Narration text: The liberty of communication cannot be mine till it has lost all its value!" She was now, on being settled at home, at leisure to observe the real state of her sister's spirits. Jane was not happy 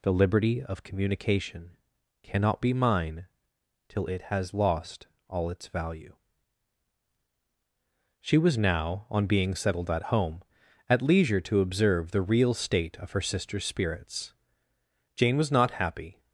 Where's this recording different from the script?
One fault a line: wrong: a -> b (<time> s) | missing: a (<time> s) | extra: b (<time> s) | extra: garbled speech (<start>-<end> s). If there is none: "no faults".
no faults